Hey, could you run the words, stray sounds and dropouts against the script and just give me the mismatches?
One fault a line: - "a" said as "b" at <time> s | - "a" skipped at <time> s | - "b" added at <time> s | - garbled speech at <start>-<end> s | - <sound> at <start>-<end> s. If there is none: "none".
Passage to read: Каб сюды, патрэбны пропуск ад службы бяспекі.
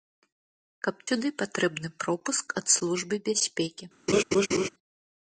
- laugh at 4.1-4.7 s